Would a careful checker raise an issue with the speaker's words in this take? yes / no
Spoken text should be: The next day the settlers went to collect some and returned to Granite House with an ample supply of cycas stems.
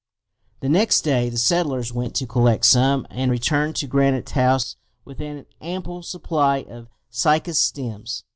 no